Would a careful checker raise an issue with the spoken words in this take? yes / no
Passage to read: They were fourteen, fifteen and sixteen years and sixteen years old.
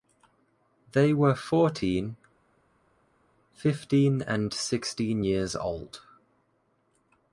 yes